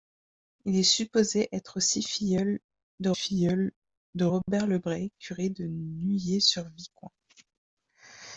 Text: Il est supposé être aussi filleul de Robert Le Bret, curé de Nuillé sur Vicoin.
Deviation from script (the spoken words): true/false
true